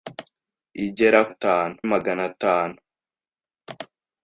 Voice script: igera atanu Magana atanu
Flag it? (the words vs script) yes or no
no